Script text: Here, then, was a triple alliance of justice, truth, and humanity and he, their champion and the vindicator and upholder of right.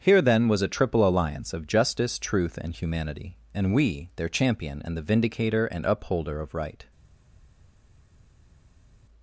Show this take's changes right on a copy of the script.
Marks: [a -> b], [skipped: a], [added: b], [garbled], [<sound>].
Here, then, was a triple alliance of justice, truth, and humanity and [he, -> we] their champion and the vindicator and upholder of right.